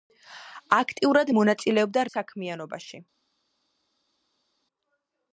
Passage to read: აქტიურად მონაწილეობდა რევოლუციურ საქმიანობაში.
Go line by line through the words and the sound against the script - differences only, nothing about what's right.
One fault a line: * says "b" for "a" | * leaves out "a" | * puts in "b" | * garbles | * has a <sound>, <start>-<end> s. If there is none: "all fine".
* leaves out "რევოლუციურ"